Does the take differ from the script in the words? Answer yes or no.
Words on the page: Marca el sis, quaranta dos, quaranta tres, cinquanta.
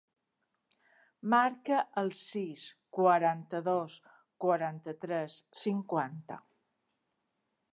no